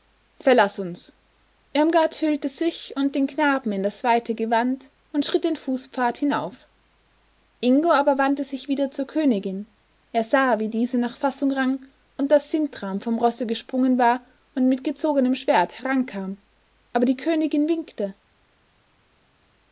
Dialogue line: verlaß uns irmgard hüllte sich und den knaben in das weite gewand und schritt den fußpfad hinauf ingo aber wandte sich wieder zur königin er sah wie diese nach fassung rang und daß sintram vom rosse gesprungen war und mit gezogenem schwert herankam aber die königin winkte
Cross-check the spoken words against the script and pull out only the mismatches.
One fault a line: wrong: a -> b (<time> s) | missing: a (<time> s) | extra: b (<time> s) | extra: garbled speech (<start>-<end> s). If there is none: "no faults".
no faults